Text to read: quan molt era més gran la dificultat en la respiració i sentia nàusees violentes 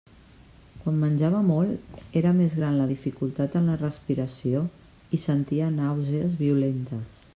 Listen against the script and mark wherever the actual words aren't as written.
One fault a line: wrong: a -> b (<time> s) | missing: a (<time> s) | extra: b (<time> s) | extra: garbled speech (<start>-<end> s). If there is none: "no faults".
extra: menjava (1.0 s)